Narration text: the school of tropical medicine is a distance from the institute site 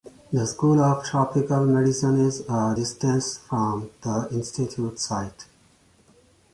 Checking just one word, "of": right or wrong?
right